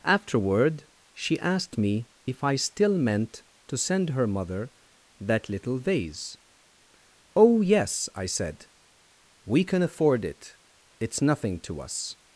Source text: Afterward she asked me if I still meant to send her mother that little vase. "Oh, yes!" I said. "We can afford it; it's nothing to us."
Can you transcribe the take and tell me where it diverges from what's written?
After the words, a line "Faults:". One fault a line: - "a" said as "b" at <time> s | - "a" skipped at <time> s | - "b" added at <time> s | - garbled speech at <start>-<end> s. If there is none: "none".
Afterward she asked me if I still meant to send her mother that little vase. "Oh, yes!" I said. "We can afford it; it's nothing to us."
Faults:
none